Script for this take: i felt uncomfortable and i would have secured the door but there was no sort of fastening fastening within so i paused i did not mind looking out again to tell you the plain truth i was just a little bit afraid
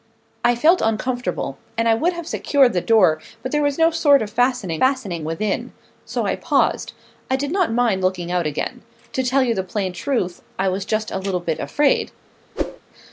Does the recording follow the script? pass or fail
pass